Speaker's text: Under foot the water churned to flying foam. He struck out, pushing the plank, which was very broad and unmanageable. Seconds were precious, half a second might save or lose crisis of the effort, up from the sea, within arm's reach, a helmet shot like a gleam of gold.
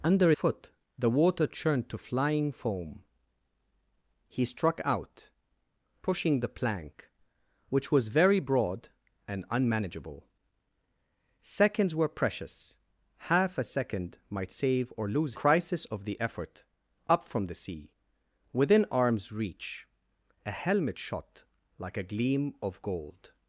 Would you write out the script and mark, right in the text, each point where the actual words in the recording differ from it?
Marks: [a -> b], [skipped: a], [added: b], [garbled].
Under foot the water churned to flying foam. He struck out, pushing the plank, which was very broad and unmanageable. Seconds were precious, half a second might save or lose crisis of the effort, up from the sea, within arm's reach, a helmet shot like a gleam of gold.